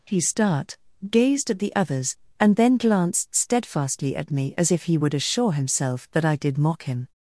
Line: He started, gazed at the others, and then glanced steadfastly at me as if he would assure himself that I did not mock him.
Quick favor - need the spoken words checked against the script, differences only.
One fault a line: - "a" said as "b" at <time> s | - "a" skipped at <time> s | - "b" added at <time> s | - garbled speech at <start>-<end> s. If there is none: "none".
- "started" said as "start" at 0.2 s
- "not" skipped at 6.6 s